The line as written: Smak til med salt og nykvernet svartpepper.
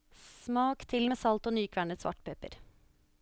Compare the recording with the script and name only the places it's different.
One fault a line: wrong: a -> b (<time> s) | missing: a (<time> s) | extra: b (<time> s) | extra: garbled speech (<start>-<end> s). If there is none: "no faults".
no faults